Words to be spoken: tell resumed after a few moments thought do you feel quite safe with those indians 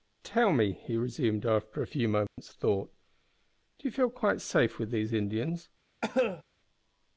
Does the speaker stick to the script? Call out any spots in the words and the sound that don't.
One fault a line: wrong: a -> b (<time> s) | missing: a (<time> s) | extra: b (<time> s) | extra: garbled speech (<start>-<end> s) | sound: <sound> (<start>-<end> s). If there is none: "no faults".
extra: me he (0.5 s)
sound: dropout (2.3-2.4 s)
wrong: those -> these (4.9 s)
sound: cough (6.0-6.4 s)